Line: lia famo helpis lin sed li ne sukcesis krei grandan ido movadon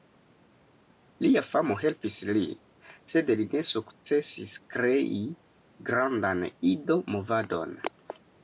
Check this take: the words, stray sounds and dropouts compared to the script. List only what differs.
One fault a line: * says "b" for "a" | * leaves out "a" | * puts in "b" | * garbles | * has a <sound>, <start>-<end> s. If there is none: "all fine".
all fine